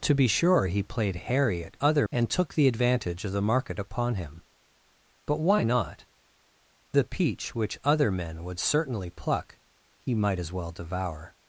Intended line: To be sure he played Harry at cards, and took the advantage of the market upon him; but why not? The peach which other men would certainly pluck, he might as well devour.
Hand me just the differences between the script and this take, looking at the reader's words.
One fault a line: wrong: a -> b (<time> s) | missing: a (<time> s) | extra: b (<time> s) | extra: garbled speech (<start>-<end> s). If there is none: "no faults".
wrong: cards -> other (1.8 s)